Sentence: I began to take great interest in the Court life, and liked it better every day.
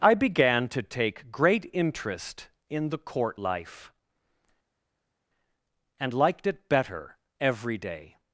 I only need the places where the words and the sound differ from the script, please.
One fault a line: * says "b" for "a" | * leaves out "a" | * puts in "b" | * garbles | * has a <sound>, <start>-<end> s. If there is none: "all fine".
all fine